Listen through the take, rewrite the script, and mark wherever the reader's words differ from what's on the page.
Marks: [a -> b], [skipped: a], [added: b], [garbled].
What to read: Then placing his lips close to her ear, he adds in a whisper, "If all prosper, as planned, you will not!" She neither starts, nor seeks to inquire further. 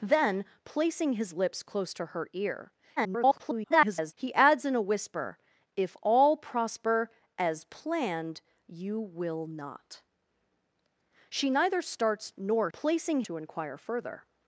Then placing his lips close to her ear, [garbled] he adds in a whisper, "If all prosper, as planned, you will not!" She neither starts, nor [seeks -> placing] to inquire further.